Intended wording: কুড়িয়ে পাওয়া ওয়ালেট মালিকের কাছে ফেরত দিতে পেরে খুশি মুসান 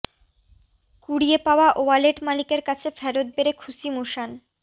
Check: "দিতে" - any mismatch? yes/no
yes